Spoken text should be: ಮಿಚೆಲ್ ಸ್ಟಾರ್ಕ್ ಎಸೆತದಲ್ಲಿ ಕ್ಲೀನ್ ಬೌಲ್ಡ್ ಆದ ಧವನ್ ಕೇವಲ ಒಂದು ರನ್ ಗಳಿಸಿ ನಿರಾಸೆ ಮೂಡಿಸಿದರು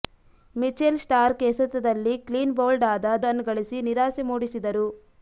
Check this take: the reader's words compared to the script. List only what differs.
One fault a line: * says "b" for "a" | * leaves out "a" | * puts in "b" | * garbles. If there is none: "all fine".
* leaves out "ಧವನ್ ಕೇವಲ ಒಂದು"